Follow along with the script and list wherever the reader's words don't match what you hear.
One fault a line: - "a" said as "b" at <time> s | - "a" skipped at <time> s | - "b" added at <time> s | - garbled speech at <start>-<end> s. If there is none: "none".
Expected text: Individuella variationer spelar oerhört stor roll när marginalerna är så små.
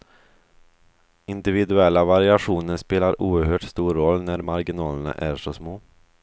none